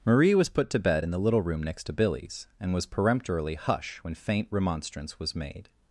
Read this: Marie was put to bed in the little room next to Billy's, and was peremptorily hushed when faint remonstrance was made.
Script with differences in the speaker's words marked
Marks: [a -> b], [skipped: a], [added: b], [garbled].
Marie was put to bed in the little room next to Billy's, and was peremptorily [hushed -> hush] when faint remonstrance was made.